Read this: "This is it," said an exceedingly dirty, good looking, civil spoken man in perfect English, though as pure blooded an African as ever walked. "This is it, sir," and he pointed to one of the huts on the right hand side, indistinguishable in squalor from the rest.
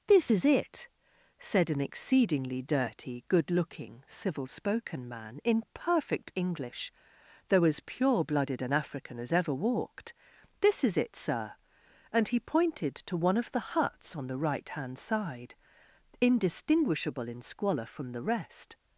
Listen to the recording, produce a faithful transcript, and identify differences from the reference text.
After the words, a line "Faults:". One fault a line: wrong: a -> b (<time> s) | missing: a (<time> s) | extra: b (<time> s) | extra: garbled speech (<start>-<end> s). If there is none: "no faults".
"This is it," said an exceedingly dirty, good looking, civil spoken man in perfect English, though as pure blooded an African as ever walked. "This is it, sir," and he pointed to one of the huts on the right hand side, indistinguishable in squalor from the rest.
Faults:
no faults